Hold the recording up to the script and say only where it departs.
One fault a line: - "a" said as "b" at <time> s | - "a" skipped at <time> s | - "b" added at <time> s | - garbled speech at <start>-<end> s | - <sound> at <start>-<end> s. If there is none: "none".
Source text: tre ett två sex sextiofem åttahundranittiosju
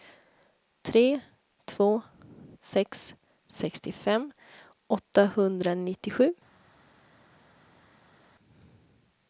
- "ett" skipped at 1.2 s